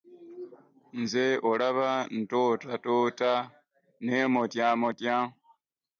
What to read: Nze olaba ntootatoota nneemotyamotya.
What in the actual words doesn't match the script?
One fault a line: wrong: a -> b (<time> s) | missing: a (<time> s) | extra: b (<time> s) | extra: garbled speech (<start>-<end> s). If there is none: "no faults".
no faults